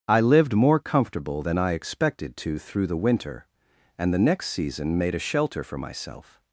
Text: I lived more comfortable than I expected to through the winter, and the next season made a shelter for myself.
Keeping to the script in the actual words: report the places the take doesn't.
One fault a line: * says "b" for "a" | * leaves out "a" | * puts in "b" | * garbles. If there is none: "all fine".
all fine